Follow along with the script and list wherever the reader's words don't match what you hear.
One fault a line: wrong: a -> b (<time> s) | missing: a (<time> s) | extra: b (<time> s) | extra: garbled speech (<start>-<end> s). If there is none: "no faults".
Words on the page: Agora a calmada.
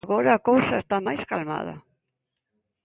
extra: cousa está máis (0.5 s)